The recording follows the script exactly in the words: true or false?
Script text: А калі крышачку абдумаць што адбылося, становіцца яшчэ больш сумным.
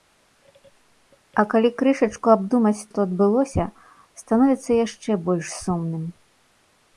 true